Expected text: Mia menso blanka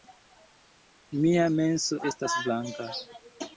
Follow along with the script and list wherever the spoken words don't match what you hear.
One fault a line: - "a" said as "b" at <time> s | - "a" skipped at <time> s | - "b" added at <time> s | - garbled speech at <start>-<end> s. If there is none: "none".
- "estas" added at 2.1 s